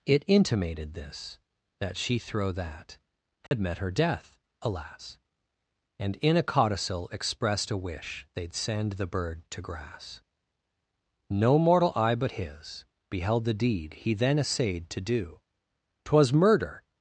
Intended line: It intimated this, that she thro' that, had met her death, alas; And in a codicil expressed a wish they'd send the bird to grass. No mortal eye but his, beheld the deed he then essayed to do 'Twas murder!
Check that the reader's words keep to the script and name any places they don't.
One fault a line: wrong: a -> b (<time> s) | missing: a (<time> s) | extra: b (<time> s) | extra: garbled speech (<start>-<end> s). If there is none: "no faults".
no faults